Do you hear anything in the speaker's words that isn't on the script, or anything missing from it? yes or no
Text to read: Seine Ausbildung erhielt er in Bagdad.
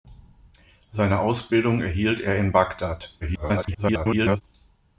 yes